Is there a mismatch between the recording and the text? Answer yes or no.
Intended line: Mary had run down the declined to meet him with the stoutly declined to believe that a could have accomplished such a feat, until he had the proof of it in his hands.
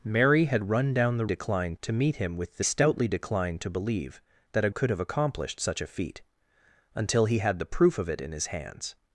no